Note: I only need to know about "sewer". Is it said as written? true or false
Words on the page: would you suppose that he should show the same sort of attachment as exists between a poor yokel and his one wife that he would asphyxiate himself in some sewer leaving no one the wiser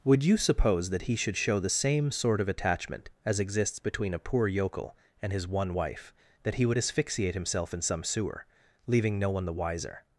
true